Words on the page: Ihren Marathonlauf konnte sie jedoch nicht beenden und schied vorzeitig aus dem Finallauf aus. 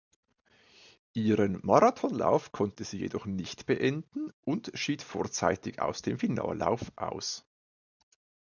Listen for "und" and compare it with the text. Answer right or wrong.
right